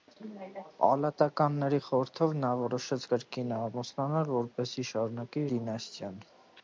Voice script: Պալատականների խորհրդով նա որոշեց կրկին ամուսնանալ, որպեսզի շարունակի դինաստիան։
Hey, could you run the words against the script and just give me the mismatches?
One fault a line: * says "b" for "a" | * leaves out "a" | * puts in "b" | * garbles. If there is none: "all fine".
all fine